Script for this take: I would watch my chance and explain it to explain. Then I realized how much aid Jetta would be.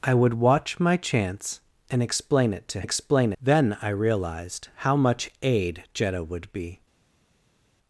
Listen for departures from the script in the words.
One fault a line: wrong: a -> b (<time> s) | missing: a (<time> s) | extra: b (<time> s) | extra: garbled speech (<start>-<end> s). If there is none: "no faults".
no faults